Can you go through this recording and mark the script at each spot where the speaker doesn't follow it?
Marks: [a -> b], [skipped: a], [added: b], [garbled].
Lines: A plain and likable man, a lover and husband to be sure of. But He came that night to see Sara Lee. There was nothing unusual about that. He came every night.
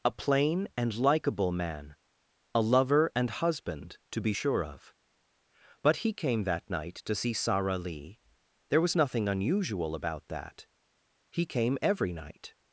A plain and likable man, a lover and husband to be sure of. But He came that night to see Sara Lee. There was nothing unusual about that. He came every night.